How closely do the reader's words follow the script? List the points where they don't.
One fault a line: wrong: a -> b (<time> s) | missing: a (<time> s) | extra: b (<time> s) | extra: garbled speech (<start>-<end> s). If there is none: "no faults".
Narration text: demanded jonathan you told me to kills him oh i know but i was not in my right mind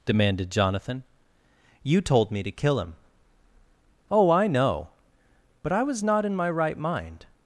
wrong: kills -> kill (2.5 s)